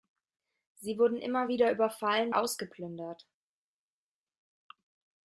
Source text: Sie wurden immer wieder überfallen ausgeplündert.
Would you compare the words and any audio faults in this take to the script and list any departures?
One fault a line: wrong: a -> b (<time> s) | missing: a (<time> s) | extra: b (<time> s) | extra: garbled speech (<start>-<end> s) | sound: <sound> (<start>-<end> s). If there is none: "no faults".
no faults